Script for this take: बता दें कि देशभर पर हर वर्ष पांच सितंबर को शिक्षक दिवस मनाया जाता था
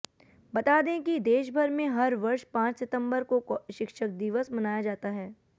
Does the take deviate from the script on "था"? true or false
true